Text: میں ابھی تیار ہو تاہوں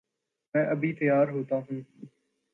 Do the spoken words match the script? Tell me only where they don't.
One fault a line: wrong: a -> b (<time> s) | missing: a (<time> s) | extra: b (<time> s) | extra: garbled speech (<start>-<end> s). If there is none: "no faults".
no faults